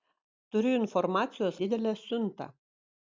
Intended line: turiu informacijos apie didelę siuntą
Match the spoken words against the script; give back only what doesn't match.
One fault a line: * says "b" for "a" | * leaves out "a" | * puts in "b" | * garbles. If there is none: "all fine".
* leaves out "apie"